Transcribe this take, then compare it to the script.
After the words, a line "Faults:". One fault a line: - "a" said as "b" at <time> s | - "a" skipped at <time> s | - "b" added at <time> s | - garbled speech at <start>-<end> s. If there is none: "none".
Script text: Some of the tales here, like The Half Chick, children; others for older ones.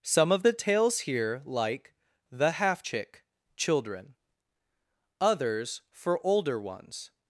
Some of the tales here, like The Half Chick, children; others for older ones.
Faults:
none